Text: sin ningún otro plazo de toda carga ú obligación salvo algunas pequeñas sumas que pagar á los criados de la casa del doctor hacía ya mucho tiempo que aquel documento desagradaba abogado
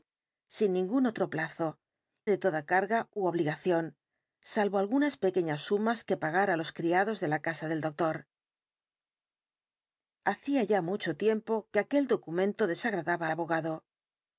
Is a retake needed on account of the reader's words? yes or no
no